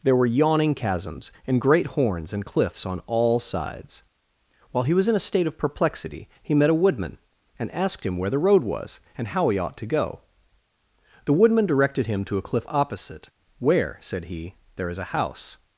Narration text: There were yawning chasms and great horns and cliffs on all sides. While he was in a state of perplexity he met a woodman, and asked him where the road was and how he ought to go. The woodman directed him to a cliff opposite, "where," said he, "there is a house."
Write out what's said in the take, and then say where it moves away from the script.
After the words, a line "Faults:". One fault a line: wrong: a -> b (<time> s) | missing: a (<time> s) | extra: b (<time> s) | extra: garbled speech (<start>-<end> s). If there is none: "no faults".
There were yawning chasms and great horns and cliffs on all sides. While he was in a state of perplexity he met a woodman, and asked him where the road was and how he ought to go. The woodman directed him to a cliff opposite, "where," said he, "there is a house."
Faults:
no faults